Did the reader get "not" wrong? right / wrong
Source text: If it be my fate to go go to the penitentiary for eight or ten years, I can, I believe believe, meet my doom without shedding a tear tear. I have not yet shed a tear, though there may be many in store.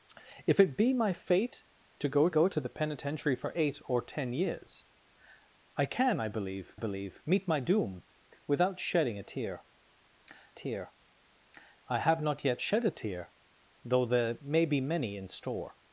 right